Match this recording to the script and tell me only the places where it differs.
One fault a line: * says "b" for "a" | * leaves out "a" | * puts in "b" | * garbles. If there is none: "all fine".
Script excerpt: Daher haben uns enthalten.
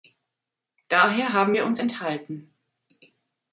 * puts in "wir"